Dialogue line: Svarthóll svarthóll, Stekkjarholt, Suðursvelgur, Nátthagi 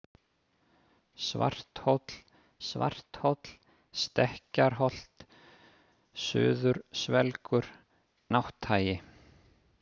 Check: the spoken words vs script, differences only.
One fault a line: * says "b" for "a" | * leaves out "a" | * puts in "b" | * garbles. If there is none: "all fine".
all fine